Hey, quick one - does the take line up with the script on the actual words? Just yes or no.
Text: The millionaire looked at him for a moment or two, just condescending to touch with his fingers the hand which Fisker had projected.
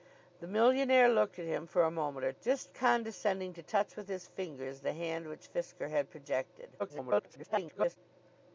no